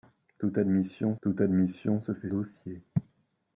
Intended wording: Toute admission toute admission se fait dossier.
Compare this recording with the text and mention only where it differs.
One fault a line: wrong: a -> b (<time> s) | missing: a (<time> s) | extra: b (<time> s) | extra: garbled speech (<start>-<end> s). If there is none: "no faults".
no faults